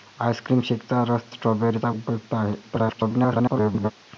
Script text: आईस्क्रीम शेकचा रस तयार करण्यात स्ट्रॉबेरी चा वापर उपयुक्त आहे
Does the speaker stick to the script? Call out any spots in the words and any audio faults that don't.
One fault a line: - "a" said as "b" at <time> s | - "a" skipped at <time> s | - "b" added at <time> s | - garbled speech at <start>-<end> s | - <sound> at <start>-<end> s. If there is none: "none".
- "तयार करण्यात" skipped at 1.2 s
- "वापर" skipped at 1.9 s
- garbled speech at 2.6-3.9 s